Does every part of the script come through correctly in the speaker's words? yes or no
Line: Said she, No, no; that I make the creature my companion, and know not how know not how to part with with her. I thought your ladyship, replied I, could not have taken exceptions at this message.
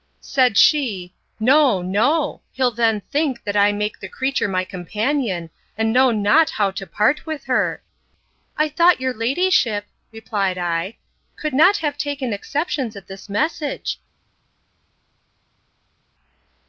no